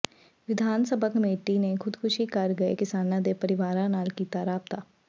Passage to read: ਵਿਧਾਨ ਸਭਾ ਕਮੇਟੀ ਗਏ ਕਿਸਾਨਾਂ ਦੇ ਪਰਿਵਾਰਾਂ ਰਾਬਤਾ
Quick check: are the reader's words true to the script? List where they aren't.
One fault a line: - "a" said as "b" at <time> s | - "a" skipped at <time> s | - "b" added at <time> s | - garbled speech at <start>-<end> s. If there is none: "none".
- "ਨੇ ਖ਼ੁਦਕੁਸ਼ੀ ਕਰ" added at 1.6 s
- "ਨਾਲ ਕੀਤਾ" added at 3.9 s